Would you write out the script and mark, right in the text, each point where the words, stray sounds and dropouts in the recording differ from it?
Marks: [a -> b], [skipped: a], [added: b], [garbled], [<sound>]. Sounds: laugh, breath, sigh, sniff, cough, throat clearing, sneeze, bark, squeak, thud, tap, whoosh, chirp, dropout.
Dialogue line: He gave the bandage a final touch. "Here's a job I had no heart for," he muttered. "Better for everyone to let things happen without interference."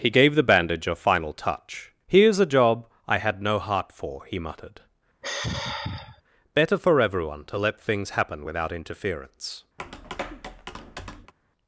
He gave the bandage a final touch. "Here's a job I had no heart for," he muttered. [sigh] "Better for everyone to let things happen without interference." [tap]